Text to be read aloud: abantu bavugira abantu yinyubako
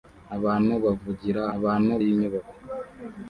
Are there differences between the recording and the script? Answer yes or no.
no